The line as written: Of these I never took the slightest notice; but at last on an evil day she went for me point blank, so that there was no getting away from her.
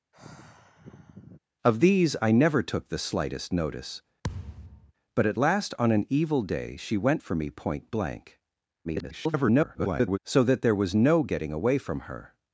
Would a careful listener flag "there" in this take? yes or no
no